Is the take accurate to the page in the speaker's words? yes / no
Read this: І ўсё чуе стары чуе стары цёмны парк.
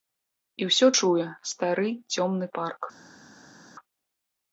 no